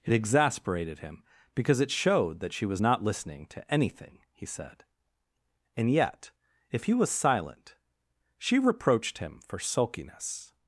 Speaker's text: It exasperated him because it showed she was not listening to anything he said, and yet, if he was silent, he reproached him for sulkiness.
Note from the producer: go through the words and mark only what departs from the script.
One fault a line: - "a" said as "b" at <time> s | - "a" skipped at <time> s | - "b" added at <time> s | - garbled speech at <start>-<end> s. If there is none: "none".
- "that" added at 2.4 s
- "he" said as "she" at 8.4 s